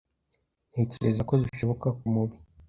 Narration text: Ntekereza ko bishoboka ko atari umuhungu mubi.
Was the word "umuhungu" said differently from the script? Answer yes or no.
yes